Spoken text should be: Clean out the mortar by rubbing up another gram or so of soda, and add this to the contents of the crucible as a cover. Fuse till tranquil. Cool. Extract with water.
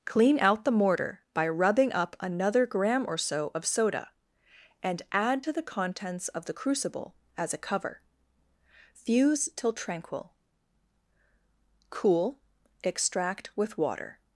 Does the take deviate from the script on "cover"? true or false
false